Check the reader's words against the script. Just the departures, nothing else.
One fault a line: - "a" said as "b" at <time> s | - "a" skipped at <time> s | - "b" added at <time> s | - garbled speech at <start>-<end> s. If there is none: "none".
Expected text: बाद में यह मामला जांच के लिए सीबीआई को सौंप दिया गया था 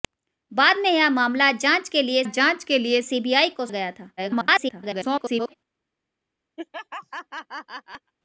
- "जांच के लिए" added at 2.3 s
- "सौंप दिया" skipped at 3.7 s
- garbled speech at 4.2-5.6 s